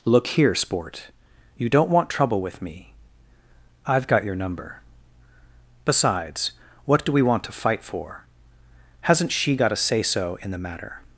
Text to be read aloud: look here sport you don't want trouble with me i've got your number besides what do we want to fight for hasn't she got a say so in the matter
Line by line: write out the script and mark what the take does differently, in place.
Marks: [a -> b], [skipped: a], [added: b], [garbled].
look here sport you don't want trouble with me i've got your number besides what do we want to fight for hasn't she got a say so in the matter